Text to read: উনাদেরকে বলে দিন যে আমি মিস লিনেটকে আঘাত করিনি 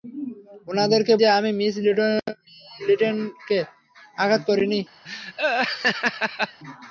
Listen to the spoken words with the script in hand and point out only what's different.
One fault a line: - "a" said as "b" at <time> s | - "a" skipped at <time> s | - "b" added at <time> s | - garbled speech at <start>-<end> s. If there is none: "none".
- "বলে দিন" skipped at 1.1 s